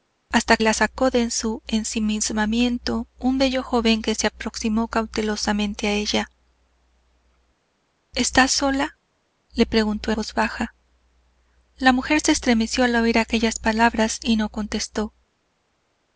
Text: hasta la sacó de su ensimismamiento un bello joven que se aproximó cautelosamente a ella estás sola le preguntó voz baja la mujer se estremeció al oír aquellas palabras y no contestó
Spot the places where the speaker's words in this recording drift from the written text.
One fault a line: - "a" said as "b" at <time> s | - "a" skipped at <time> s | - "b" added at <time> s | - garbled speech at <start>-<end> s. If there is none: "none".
none